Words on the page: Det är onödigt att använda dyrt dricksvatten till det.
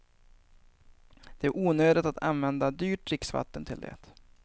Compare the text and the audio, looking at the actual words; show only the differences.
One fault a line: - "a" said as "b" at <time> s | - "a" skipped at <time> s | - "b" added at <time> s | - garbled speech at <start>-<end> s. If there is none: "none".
none